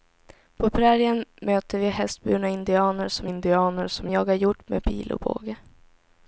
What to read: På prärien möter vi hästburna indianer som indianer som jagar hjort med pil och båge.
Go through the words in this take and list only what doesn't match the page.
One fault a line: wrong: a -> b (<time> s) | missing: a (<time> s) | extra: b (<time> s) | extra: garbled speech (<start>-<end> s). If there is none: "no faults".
no faults